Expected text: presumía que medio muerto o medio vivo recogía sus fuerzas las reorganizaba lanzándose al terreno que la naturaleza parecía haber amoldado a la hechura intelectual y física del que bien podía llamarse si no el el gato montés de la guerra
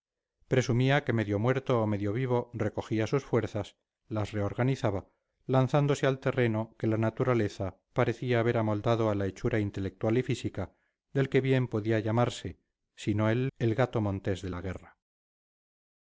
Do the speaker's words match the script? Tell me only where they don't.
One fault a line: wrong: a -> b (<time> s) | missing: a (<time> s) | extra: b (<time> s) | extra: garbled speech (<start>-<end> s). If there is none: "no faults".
no faults